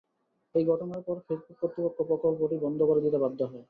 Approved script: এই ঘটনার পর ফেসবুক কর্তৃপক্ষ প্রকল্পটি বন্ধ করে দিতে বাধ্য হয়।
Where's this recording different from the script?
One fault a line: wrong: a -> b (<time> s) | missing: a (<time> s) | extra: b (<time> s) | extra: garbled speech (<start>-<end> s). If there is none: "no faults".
no faults